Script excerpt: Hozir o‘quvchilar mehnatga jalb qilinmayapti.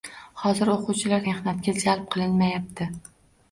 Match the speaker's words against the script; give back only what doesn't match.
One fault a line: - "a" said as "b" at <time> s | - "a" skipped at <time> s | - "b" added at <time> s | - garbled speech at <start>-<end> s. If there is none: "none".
none